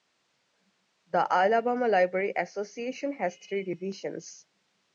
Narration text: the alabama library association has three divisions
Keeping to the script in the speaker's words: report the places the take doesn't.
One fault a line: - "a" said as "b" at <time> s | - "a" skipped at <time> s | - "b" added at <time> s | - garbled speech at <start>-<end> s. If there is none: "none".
none